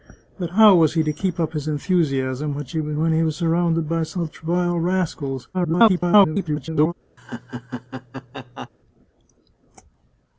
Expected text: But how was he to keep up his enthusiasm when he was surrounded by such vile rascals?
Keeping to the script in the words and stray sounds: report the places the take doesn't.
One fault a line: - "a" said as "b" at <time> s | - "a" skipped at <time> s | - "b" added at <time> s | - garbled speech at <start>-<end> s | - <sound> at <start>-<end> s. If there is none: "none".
- garbled speech at 5.5-6.9 s
- laugh at 7.2-8.7 s